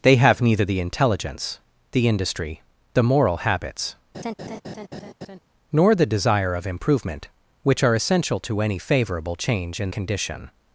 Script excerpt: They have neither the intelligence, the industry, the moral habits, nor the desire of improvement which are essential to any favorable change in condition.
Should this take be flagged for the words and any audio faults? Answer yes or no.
yes